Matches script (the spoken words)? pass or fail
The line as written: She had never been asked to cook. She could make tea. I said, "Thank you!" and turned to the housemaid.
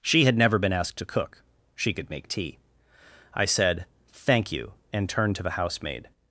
pass